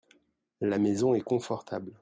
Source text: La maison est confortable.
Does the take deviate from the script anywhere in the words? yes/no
no